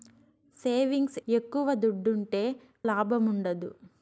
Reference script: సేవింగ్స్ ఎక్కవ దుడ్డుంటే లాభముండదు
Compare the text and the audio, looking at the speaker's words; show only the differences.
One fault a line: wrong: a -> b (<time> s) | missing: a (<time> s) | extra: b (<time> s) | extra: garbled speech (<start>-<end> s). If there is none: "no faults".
no faults